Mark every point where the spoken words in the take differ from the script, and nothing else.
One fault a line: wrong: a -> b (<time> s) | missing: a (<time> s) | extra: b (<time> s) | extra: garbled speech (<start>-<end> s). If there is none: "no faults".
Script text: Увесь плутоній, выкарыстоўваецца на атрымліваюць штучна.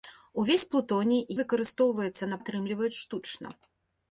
no faults